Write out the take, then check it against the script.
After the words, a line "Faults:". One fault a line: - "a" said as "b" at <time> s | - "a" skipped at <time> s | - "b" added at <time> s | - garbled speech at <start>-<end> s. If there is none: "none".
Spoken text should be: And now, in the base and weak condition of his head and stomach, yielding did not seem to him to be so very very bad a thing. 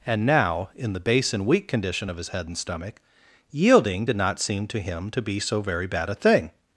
And now, in the base and weak condition of his head and stomach, yielding did not seem to him to be so very bad a thing.
Faults:
- "very" skipped at 5.9 s